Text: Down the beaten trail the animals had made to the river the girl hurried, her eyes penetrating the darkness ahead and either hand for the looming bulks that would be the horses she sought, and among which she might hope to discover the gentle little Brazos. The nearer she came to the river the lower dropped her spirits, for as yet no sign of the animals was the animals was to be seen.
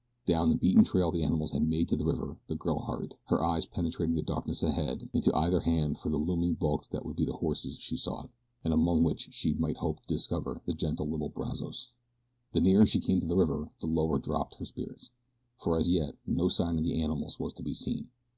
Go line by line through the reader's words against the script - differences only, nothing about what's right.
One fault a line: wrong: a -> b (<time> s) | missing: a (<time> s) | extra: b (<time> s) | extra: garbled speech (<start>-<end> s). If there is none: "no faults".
extra: to (5.2 s)
missing: the animals was (17.5 s)